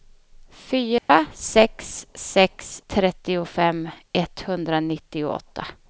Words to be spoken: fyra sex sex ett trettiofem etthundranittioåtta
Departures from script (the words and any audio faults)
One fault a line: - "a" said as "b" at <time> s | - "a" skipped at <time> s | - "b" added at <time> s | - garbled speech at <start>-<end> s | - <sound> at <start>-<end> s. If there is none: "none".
- dropout at 1.0-1.1 s
- "ett" skipped at 2.8 s